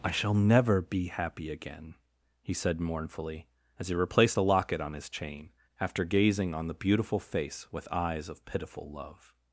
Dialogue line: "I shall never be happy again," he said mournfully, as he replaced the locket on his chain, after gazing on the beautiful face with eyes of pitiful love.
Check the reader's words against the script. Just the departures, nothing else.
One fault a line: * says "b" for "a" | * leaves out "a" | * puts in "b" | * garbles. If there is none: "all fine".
all fine